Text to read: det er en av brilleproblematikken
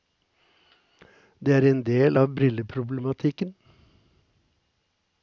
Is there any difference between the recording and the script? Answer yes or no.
yes